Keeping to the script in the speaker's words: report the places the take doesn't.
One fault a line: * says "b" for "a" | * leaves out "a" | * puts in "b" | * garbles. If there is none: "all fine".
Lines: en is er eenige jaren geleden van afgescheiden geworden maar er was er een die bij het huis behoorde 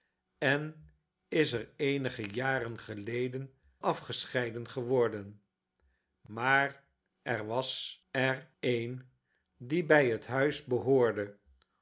* leaves out "van"